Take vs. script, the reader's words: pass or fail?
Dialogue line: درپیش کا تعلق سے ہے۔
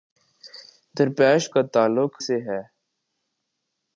pass